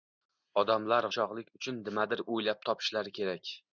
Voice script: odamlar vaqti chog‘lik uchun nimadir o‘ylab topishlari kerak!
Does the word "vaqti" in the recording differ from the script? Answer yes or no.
yes